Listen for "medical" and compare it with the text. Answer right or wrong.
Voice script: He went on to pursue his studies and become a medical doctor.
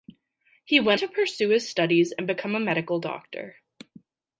right